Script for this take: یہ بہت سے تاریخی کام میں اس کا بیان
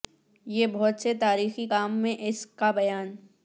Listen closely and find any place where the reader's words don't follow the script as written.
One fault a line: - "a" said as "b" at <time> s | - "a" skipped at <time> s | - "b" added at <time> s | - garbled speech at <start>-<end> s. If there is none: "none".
none